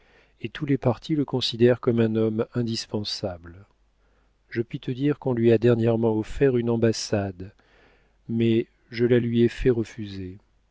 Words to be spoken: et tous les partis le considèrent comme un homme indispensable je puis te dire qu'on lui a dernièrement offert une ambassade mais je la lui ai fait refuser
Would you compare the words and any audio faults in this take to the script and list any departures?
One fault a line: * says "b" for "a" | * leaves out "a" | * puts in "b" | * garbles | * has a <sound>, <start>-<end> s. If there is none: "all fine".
all fine